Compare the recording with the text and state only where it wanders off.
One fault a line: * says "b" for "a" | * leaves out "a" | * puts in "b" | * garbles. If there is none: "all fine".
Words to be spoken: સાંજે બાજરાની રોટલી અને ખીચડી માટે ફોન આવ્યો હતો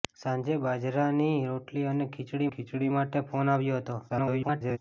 * puts in "ખીચડી"
* garbles